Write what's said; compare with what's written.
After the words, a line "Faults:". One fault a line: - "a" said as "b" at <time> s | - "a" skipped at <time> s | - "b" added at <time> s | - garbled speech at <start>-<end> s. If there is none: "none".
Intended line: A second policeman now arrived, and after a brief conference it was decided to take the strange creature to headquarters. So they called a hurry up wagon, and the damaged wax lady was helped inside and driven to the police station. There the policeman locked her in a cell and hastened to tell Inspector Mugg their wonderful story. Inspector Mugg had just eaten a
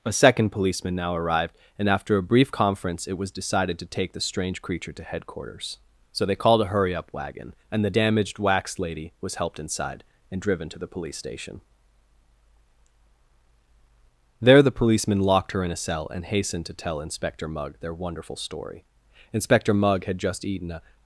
A second policeman now arrived, and after a brief conference it was decided to take the strange creature to headquarters. So they called a hurry up wagon, and the damaged wax lady was helped inside and driven to the police station. There the policeman locked her in a cell and hastened to tell Inspector Mugg their wonderful story. Inspector Mugg had just eaten a
Faults:
none